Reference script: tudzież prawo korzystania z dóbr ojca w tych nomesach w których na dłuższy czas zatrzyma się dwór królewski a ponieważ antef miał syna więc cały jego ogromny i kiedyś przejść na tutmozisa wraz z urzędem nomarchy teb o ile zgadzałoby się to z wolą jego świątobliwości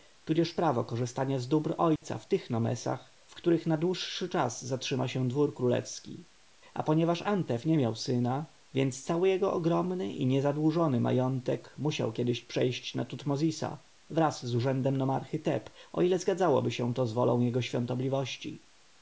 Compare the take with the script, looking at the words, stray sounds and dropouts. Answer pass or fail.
fail